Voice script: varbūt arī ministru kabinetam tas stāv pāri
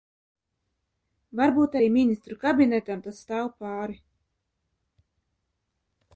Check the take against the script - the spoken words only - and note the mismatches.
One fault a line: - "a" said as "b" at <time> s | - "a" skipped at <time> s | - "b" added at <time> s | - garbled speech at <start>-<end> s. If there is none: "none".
none